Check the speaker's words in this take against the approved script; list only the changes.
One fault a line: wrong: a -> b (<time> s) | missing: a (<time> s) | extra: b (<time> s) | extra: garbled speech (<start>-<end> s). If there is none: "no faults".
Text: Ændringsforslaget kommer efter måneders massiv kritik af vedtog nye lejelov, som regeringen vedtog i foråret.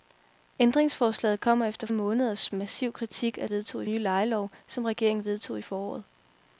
no faults